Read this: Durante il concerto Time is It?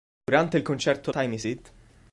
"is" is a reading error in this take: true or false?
false